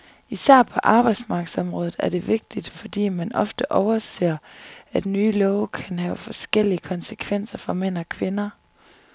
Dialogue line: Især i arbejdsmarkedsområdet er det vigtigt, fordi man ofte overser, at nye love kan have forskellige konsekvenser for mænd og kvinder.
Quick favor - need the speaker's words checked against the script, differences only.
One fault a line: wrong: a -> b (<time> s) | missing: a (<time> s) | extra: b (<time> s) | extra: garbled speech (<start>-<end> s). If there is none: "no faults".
wrong: i -> på (0.6 s)